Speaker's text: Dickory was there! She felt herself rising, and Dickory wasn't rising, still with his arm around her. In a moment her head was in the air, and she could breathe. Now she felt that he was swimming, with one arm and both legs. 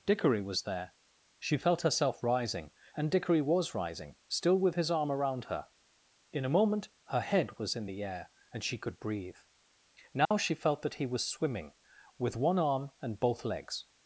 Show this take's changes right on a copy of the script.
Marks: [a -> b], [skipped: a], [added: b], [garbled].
Dickory was there! She felt herself rising, and Dickory [wasn't -> was] rising, still with his arm around her. In a moment her head was in the air, and she could breathe. Now she felt that he was swimming, with one arm and both legs.